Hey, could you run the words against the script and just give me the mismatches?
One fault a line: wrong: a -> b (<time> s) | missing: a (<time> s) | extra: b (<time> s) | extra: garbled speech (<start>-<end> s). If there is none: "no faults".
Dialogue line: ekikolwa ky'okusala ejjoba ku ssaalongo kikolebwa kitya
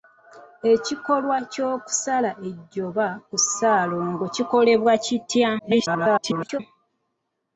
extra: garbled speech (5.6-6.6 s)